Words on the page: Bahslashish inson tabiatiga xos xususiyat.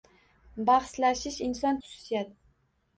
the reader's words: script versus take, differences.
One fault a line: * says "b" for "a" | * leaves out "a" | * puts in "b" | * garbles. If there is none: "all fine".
* leaves out "tabiatiga xos"